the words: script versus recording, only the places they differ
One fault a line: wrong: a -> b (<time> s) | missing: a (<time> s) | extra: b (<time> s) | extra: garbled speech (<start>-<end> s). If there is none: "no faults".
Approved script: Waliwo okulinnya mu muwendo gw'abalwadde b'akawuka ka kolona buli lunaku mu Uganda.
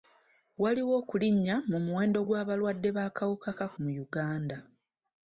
missing: kolona buli lunaku (3.7 s)